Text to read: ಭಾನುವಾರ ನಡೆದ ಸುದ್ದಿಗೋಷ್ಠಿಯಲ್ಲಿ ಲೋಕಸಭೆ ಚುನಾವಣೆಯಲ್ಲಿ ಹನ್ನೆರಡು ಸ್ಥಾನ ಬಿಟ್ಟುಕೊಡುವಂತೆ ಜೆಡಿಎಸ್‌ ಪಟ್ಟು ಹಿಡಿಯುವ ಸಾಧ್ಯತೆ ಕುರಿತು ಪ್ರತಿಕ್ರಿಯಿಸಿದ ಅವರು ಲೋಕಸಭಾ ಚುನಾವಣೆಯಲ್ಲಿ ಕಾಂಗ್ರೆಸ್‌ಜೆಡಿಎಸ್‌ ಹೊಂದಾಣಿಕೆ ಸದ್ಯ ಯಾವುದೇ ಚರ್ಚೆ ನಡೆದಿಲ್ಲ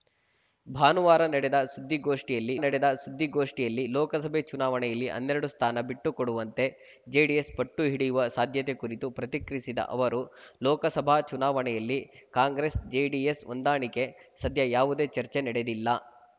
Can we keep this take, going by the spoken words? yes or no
no